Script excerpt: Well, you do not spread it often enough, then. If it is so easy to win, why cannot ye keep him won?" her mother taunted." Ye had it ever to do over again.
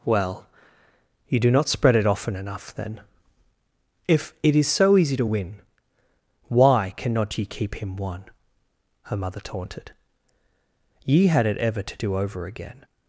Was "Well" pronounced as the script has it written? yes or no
yes